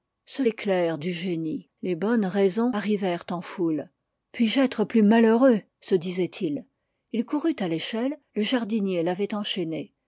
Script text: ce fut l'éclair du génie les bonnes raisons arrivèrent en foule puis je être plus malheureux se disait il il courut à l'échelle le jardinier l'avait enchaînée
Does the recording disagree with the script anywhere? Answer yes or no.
yes